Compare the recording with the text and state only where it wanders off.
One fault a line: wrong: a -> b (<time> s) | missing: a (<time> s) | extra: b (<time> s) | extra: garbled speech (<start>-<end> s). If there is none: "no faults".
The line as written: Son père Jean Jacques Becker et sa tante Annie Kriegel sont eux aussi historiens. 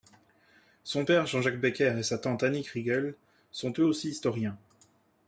no faults